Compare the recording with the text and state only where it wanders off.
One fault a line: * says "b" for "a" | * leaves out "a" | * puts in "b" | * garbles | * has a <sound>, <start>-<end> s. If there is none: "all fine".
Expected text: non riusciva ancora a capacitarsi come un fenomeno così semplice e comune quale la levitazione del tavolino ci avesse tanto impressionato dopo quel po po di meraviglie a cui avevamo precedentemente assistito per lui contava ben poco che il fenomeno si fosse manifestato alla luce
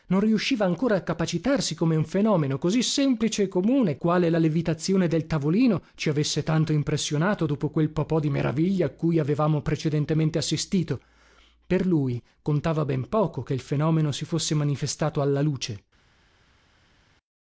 all fine